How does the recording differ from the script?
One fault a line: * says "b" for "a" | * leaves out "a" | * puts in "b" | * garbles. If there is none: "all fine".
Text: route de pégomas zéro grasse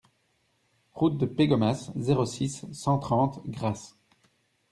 * puts in "six cent trente"